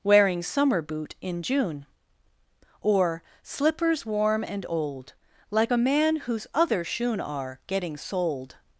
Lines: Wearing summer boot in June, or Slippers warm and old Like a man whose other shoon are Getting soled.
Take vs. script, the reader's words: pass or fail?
pass